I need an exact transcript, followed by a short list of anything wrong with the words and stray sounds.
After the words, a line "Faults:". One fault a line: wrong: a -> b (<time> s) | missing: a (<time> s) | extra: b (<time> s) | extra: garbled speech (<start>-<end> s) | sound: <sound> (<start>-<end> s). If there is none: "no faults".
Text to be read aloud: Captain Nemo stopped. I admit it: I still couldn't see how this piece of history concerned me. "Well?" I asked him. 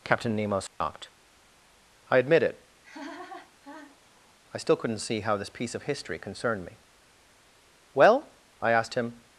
Captain Nemo stopped. I admit it: I still couldn't see how this piece of history concerned me. "Well?" I asked him.
Faults:
sound: dropout (0.7-0.8 s)
sound: laugh (2.8-4.3 s)